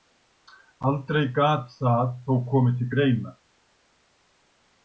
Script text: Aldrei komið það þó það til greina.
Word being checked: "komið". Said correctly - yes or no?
no